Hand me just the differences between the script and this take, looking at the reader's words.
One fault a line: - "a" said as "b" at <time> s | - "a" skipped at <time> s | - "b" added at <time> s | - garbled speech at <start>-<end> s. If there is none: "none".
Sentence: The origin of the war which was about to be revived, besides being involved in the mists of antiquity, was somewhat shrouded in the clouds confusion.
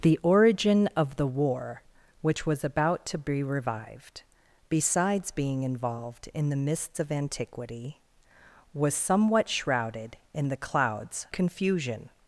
none